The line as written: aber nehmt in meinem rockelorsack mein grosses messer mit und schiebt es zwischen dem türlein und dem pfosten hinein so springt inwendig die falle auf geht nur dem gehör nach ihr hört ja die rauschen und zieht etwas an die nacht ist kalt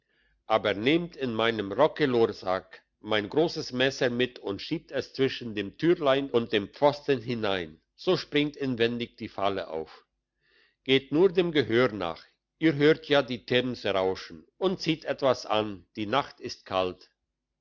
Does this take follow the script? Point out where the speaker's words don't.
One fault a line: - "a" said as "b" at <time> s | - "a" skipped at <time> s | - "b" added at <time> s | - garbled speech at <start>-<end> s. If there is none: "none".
- "themse" added at 13.4 s